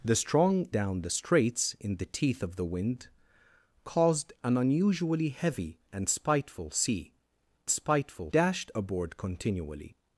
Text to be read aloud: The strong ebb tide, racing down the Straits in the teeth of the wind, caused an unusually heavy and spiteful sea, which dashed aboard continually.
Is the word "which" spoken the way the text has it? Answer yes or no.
no